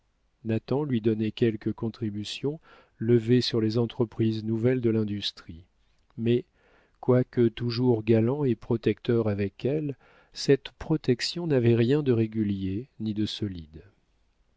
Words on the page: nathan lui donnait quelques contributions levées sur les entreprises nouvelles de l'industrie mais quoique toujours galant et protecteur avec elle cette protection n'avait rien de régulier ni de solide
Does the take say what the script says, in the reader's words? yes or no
yes